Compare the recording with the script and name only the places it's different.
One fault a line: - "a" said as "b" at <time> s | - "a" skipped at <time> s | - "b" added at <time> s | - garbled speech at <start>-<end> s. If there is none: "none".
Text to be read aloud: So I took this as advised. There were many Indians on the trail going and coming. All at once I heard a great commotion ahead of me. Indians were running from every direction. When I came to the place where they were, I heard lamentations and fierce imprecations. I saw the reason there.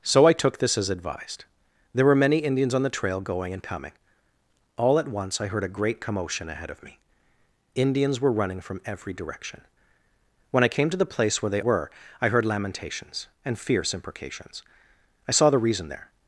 none